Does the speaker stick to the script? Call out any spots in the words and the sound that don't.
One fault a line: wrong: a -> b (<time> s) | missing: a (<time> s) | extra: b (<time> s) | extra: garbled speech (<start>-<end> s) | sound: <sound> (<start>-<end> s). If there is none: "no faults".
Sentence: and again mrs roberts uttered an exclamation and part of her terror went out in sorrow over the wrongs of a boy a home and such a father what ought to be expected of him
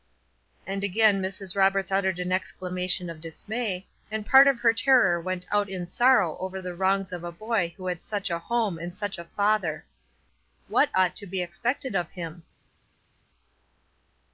extra: of dismay (3.1 s)
extra: who had such (7.7 s)